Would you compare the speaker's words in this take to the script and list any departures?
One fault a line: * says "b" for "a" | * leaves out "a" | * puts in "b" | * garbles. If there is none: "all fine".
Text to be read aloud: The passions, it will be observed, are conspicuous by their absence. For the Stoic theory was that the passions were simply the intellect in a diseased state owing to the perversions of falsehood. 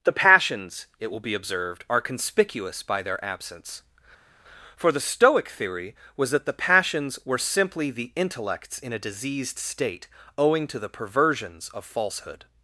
* says "intellects" for "intellect"